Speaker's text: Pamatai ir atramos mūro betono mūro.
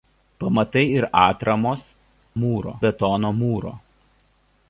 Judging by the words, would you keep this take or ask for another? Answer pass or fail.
pass